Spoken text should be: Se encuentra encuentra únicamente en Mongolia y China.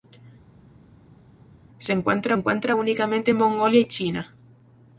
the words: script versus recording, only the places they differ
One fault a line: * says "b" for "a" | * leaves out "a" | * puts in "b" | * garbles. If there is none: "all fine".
all fine